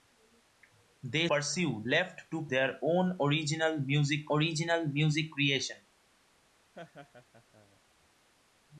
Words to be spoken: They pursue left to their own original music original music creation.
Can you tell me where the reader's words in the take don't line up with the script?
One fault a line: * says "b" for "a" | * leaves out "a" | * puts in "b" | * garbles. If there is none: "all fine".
all fine